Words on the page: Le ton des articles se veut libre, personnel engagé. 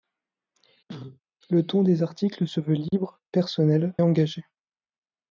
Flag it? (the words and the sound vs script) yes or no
yes